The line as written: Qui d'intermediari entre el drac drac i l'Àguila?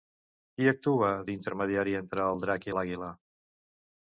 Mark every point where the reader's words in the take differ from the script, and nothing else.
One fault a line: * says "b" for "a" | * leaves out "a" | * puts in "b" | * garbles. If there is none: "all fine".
* puts in "actua"
* leaves out "drac"